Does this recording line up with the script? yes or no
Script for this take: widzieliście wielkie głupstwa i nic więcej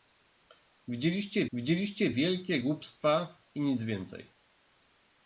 no